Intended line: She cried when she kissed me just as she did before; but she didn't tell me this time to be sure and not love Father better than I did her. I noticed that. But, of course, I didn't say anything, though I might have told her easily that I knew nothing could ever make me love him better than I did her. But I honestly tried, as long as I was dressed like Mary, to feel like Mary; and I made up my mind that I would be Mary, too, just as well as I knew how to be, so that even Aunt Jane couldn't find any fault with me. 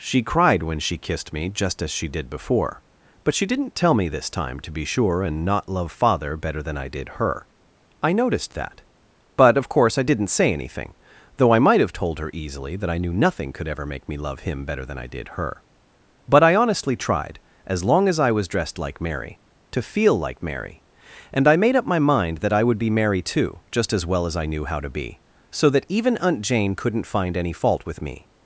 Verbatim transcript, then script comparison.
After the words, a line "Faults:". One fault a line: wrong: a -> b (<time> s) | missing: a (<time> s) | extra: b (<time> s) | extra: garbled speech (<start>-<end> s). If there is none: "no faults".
She cried when she kissed me just as she did before; but she didn't tell me this time to be sure and not love Father better than I did her. I noticed that. But, of course, I didn't say anything, though I might have told her easily that I knew nothing could ever make me love him better than I did her. But I honestly tried, as long as I was dressed like Mary, to feel like Mary; and I made up my mind that I would be Mary, too, just as well as I knew how to be, so that even Aunt Jane couldn't find any fault with me.
Faults:
no faults